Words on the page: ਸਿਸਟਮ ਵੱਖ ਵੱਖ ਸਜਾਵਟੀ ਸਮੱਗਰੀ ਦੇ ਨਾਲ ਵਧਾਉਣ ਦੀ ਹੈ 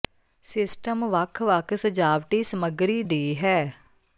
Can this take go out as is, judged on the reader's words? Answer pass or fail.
fail